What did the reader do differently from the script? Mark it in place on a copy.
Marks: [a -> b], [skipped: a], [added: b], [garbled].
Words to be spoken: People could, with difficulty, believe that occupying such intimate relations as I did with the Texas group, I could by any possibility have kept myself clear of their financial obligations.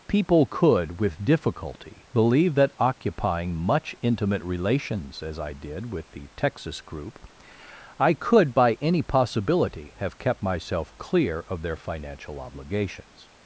People could, with difficulty, believe that occupying [such -> much] intimate relations as I did with the Texas group, I could by any possibility have kept myself clear of their financial obligations.